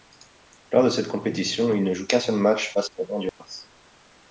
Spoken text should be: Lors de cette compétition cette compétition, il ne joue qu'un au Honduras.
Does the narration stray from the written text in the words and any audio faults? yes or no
yes